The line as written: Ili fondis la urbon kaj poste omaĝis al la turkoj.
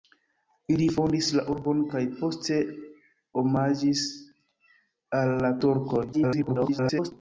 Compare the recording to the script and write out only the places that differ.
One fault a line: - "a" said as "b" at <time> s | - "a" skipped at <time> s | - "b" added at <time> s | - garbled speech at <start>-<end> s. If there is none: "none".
- garbled speech at 6.1-7.1 s